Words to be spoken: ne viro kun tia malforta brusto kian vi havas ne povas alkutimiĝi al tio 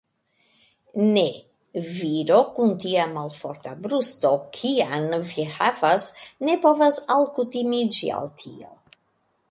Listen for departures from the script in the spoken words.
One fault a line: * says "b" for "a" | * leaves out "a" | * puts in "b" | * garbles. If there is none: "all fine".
all fine